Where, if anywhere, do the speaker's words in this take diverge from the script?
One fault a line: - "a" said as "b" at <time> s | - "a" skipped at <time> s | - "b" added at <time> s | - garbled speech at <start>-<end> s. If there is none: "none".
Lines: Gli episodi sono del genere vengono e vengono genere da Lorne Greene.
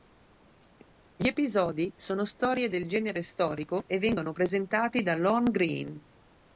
- "storie" added at 2.2 s
- "vengono" said as "storico" at 3.2 s
- "genere" said as "presentati" at 4.3 s